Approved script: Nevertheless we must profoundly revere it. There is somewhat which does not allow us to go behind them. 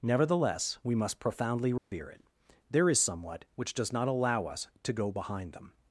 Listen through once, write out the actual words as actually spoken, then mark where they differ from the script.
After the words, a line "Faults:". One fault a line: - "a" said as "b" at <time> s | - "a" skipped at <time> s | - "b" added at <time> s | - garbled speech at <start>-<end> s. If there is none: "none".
Nevertheless we must profoundly revere it. There is somewhat which does not allow us to go behind them.
Faults:
none